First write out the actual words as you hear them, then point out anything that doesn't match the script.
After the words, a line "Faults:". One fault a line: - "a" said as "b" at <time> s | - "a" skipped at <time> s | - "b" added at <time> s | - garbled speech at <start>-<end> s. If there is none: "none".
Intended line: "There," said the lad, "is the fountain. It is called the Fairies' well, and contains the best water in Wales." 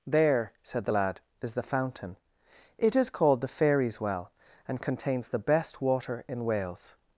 "There," said the lad, "is the fountain. It is called the Fairies' well, and contains the best water in Wales."
Faults:
none